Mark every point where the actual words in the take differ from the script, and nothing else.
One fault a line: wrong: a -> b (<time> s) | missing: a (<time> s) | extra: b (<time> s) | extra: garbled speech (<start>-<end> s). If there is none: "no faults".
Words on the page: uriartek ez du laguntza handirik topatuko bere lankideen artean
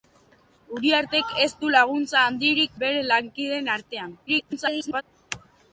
missing: topatuko (2.8 s)
extra: garbled speech (4.3-5.0 s)